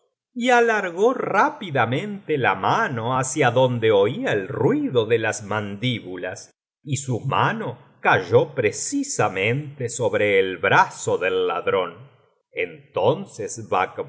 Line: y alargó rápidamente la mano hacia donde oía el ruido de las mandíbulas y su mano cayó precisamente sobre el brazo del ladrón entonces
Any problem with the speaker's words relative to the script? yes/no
no